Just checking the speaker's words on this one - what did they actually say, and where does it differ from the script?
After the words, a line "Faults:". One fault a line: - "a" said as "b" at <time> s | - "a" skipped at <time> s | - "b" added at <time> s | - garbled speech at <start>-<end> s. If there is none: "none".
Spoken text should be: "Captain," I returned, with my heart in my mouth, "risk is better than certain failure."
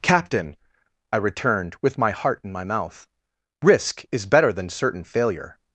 "Captain," I returned, with my heart in my mouth, "risk is better than certain failure."
Faults:
none